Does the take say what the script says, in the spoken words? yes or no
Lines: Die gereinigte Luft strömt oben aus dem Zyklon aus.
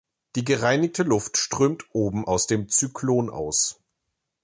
yes